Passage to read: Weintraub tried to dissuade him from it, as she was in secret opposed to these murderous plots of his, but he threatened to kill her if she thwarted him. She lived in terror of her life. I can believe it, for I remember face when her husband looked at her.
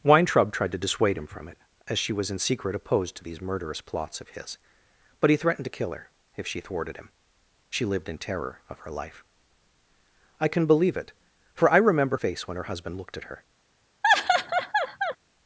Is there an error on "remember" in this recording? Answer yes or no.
no